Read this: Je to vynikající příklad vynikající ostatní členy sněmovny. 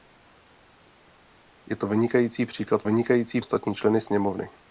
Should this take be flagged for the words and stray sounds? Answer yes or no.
no